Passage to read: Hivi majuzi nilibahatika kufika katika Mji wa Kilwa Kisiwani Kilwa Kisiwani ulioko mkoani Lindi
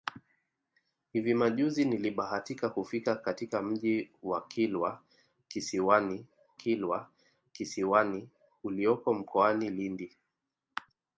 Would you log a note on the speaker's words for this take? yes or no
no